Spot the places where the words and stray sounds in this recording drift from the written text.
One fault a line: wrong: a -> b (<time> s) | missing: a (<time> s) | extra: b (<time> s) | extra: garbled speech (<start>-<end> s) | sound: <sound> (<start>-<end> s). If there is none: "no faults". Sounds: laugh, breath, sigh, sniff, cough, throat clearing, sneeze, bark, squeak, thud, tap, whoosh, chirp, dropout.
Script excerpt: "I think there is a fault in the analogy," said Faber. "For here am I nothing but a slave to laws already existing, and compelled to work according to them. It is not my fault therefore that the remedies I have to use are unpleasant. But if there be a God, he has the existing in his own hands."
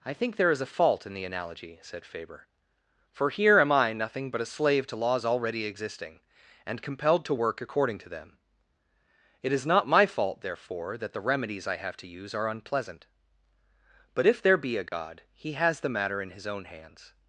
sound: dropout (14.9-14.9 s)
wrong: existing -> matter (15.9 s)